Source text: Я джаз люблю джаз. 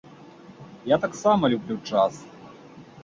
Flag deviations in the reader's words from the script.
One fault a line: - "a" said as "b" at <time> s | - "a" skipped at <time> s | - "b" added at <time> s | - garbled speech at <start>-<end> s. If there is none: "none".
- "джаз" said as "таксама" at 1.0 s